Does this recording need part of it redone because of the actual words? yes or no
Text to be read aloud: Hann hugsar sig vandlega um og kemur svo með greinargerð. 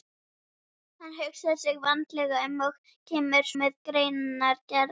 yes